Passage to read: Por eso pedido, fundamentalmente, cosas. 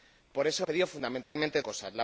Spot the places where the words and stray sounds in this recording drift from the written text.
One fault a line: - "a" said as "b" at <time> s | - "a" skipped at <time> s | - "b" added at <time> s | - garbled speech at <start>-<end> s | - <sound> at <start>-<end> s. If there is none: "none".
- dropout at 1.2-1.4 s